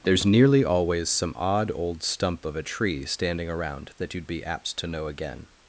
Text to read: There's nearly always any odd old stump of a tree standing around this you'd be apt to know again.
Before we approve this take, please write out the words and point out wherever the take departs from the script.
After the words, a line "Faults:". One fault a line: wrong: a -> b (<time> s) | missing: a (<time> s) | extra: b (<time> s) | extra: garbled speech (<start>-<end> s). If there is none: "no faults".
There's nearly always some odd old stump of a tree standing around that you'd be apt to know again.
Faults:
wrong: any -> some (1.1 s)
wrong: this -> that (4.0 s)